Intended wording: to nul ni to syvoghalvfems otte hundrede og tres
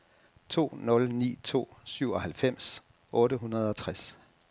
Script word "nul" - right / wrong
right